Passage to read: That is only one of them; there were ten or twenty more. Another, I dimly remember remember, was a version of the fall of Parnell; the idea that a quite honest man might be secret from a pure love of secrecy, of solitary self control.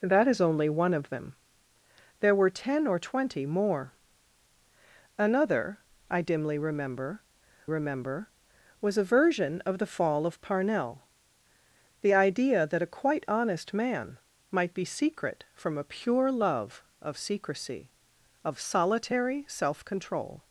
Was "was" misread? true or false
false